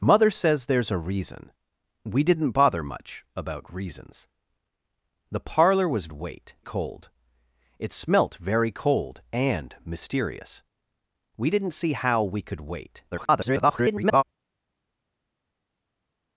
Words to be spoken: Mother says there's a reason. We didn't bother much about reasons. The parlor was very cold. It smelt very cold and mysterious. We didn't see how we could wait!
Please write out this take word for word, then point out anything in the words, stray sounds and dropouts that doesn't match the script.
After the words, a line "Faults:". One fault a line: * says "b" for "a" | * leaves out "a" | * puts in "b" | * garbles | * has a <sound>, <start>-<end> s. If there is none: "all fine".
Mother says there's a reason. We didn't bother much about reasons. The parlor was wait cold. It smelt very cold and mysterious. We didn't see how we could wait! [garbled]
Faults:
* says "wait" for "very"
* garbles